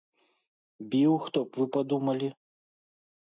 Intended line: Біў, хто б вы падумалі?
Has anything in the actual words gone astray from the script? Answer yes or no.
no